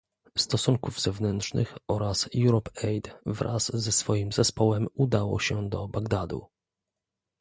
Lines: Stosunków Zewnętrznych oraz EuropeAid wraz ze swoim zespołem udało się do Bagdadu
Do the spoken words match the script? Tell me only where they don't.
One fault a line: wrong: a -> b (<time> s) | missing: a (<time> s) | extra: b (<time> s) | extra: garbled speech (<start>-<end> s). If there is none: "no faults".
no faults